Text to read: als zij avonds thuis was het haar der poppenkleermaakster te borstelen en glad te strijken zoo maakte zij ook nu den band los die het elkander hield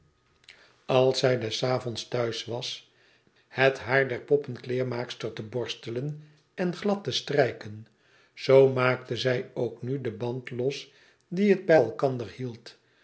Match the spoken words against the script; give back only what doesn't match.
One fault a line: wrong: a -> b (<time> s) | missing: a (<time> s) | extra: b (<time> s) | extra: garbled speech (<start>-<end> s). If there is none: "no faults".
extra: des (1.4 s)
extra: bij (11.6 s)